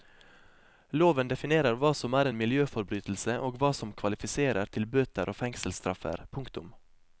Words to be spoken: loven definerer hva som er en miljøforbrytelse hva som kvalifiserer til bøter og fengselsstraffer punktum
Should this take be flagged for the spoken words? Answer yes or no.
yes